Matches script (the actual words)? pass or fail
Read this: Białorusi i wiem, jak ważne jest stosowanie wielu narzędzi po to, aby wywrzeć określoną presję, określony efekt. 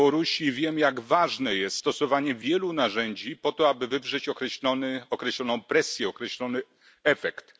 pass